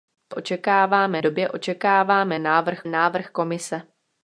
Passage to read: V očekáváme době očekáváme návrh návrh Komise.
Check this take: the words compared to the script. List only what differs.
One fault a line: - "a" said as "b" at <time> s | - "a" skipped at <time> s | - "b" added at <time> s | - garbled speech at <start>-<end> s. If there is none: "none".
none